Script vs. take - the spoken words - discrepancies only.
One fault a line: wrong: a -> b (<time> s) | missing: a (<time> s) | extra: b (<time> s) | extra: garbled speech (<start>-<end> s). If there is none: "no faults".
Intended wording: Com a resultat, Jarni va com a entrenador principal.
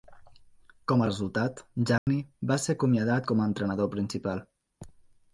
extra: ser acomiadat (2.6 s)